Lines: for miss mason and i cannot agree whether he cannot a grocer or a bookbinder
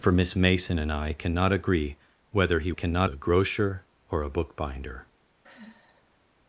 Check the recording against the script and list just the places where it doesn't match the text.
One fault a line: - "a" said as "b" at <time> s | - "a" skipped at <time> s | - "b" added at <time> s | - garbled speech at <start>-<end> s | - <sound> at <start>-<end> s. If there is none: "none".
- sigh at 5.4-6.2 s